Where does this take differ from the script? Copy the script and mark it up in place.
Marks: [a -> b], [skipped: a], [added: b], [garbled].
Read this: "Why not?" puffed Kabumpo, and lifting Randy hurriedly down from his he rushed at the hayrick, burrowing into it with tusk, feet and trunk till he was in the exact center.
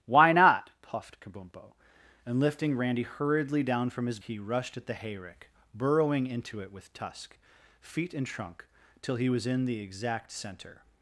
"Why not?" puffed Kabumpo, and lifting Randy hurriedly down from his he rushed at the hayrick, burrowing into it with tusk, feet and trunk till he was in the exact center.